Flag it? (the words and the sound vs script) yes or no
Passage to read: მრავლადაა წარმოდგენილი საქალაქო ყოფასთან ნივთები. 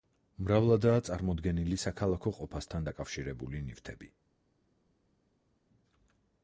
yes